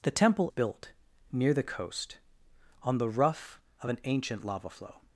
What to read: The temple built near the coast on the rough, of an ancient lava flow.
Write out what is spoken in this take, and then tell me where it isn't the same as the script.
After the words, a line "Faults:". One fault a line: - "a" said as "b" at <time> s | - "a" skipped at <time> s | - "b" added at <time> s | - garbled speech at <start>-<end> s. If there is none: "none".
The temple built near the coast on the rough, of an ancient lava flow.
Faults:
none